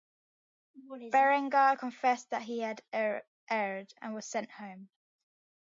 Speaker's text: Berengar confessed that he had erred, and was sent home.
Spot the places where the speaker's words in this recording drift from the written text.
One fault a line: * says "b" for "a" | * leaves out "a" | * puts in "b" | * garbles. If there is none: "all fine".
all fine